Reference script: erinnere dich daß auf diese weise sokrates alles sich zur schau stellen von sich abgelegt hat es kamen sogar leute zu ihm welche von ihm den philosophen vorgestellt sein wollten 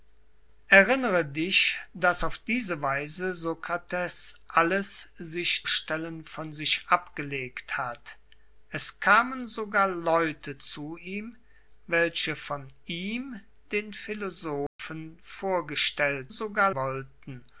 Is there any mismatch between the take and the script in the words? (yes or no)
yes